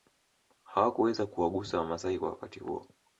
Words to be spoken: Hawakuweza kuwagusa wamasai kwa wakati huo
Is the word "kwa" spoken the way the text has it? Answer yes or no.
yes